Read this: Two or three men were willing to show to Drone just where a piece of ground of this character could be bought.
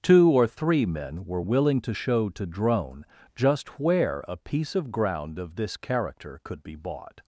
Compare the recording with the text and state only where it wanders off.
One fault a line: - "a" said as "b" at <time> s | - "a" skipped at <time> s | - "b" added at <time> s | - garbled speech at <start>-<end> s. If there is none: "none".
none